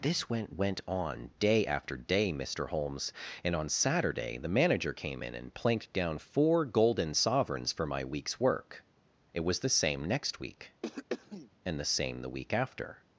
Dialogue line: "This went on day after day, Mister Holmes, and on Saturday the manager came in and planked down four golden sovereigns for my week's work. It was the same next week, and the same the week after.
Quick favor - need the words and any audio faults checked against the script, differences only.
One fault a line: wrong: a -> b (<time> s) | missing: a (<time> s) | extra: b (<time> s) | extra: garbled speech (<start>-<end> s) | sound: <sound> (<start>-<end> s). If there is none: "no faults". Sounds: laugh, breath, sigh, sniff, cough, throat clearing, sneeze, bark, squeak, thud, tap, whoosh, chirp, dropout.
extra: went (0.5 s)
sound: throat clearing (10.8-11.5 s)